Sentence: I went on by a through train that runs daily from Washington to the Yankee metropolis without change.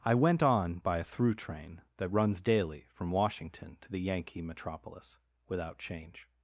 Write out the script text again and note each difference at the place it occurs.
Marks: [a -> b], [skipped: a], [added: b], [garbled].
I went on by a through train that runs daily from Washington to the Yankee metropolis without change.